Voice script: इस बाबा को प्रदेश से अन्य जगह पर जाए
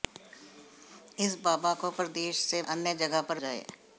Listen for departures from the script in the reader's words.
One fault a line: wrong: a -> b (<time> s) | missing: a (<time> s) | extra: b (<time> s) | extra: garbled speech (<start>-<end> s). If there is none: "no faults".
no faults